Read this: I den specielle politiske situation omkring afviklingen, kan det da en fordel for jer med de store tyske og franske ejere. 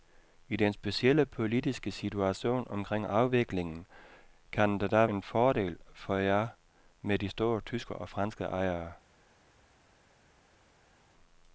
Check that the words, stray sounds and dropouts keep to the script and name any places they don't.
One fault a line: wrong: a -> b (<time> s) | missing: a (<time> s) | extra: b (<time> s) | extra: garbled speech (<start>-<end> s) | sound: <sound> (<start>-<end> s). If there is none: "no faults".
no faults